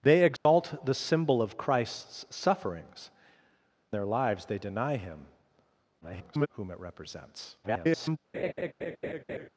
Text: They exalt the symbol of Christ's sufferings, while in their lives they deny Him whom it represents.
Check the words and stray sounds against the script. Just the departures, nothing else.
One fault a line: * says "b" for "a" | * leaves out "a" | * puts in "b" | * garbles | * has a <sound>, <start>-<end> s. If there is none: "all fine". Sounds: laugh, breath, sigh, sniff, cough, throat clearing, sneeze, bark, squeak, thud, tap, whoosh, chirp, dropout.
* has a dropout, 0.4-0.5 s
* leaves out "while in"
* garbles
* garbles
* has a laugh, 8.3-9.5 s